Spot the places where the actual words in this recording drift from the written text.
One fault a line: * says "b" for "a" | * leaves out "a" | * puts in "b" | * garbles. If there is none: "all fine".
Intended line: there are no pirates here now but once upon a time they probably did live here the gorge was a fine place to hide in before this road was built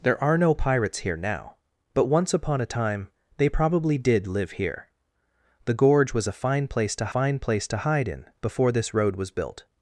* puts in "fine place to"